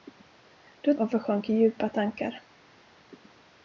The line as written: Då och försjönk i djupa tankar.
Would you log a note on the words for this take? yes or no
no